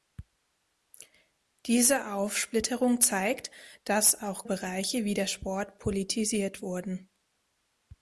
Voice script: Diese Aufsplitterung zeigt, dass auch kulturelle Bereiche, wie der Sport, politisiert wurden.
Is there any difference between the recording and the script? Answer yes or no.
yes